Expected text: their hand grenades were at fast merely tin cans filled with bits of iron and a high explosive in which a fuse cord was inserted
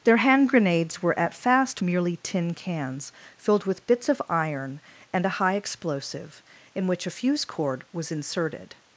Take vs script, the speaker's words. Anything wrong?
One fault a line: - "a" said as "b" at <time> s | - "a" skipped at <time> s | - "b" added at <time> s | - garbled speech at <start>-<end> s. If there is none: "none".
none